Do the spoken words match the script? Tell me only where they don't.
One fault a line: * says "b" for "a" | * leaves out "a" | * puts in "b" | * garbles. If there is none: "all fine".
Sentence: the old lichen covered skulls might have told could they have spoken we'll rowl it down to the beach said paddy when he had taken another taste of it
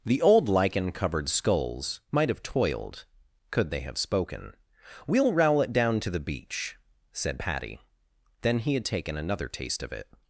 * says "toiled" for "told"
* says "then" for "when"